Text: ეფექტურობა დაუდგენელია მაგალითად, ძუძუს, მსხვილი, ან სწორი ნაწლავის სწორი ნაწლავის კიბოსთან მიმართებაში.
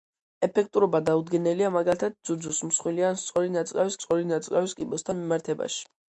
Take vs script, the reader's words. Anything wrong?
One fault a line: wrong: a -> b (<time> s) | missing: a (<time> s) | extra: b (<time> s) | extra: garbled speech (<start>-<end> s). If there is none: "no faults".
no faults